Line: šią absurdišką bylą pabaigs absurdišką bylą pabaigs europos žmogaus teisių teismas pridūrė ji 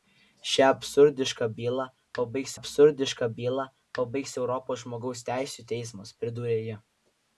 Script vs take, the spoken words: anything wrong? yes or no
no